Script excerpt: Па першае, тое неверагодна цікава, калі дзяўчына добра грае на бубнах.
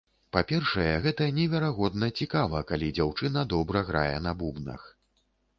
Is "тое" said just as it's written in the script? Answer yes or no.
no